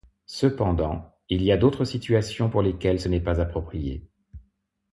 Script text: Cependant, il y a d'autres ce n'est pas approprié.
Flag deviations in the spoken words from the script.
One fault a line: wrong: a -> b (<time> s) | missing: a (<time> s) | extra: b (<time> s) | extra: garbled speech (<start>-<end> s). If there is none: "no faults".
extra: situations pour lesquelles (1.8 s)